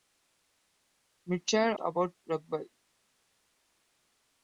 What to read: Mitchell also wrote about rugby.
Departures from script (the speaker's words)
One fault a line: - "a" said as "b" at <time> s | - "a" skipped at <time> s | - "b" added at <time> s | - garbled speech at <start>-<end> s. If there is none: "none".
- "also wrote" skipped at 1.8 s